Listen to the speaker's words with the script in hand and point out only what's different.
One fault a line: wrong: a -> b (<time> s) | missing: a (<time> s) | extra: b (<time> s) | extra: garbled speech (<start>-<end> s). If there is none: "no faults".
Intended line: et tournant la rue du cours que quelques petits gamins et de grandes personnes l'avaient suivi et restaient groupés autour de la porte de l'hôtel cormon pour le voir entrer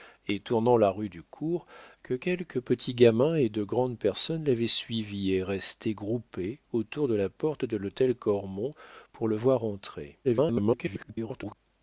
extra: garbled speech (10.2-11.5 s)